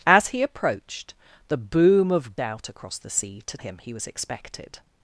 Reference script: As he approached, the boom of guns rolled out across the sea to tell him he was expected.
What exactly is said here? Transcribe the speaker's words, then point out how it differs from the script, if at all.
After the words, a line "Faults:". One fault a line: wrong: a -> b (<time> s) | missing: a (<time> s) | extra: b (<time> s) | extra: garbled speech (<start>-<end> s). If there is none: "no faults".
As he approached, the boom of out across the sea to him he was expected.
Faults:
missing: guns rolled (2.4 s)
missing: tell (3.6 s)